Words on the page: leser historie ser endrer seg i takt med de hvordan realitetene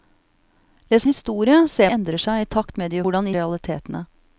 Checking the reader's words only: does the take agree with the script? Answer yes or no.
yes